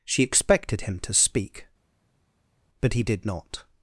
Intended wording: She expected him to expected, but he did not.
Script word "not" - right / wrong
right